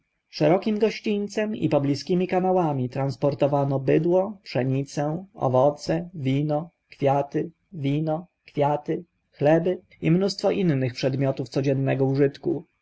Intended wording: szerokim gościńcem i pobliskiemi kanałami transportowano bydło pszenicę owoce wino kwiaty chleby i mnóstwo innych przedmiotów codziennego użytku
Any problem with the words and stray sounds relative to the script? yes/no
yes